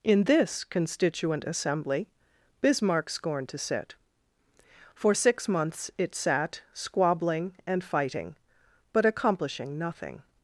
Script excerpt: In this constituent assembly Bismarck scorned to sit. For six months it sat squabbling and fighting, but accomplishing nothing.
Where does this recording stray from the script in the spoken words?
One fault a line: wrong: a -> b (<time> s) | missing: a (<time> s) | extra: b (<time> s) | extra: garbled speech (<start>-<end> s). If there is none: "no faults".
no faults